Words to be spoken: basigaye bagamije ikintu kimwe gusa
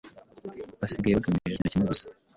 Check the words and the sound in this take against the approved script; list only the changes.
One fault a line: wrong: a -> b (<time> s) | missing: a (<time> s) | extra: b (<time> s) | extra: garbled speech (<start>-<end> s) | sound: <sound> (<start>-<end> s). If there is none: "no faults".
sound: dropout (1.6-1.7 s)